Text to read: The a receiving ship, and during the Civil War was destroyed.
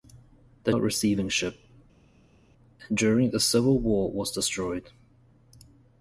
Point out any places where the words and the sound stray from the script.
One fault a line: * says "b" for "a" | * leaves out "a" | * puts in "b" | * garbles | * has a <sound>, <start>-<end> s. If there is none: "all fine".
all fine